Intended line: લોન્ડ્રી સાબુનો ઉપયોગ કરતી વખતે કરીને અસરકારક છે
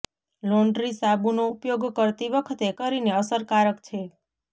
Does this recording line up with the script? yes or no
yes